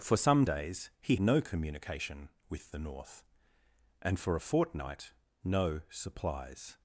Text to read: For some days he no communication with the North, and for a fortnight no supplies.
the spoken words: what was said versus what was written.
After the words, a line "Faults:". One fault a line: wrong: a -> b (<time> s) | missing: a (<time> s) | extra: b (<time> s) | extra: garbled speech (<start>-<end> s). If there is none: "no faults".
For some days he no communication with the North, and for a fortnight no supplies.
Faults:
no faults